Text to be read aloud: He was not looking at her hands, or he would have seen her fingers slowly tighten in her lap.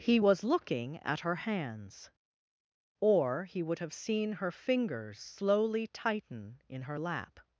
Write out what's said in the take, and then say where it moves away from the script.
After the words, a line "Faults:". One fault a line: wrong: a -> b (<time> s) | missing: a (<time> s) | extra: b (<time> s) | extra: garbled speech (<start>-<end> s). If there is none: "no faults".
He was looking at her hands, or he would have seen her fingers slowly tighten in her lap.
Faults:
missing: not (0.5 s)